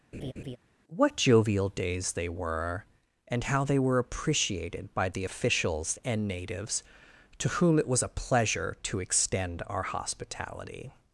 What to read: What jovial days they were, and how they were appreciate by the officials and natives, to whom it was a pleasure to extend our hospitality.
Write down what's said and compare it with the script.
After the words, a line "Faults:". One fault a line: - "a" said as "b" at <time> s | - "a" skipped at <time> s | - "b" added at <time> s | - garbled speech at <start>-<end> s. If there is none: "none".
What jovial days they were, and how they were appreciated by the officials and natives, to whom it was a pleasure to extend our hospitality.
Faults:
- "appreciate" said as "appreciated" at 4.0 s